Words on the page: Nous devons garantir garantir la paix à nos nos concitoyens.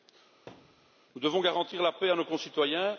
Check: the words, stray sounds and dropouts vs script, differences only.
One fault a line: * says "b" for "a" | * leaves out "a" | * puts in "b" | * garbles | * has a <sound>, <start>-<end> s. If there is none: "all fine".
* has a thud, 0.5-1.0 s
* leaves out "garantir"
* leaves out "nos"